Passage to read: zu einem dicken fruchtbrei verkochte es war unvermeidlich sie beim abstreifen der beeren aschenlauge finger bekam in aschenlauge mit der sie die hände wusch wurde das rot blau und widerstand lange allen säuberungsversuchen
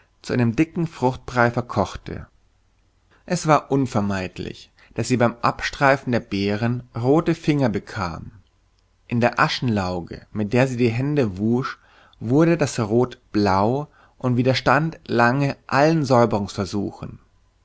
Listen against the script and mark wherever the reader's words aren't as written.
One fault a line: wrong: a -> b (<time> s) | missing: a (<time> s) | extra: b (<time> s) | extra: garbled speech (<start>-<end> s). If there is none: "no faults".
extra: daß (4.9 s)
wrong: aschenlauge -> rote (6.9 s)
extra: der (9.2 s)